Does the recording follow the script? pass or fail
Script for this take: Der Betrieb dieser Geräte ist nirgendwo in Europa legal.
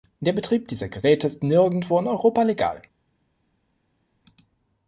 pass